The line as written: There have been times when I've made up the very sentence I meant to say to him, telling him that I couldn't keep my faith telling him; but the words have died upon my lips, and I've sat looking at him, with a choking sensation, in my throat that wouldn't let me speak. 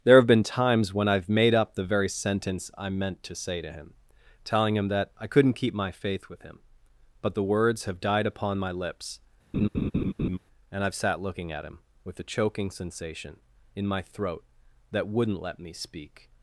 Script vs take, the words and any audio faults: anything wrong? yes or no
yes